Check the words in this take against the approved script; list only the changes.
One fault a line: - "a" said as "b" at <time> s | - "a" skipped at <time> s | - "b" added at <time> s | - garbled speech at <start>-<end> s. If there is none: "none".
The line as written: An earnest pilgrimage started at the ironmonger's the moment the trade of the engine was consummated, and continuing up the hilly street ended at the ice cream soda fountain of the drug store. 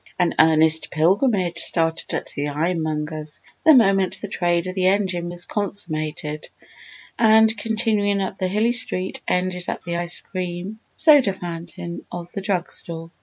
none